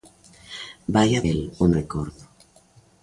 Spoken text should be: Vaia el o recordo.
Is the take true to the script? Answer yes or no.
yes